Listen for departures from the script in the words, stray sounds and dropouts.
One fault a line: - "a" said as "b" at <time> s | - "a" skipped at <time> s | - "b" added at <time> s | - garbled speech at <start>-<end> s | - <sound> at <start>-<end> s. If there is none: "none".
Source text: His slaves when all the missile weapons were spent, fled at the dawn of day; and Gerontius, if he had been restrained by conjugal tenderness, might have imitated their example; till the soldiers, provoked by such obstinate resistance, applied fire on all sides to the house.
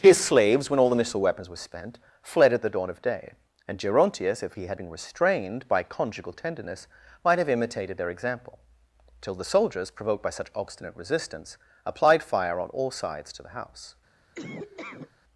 - laugh at 14.3-15.1 s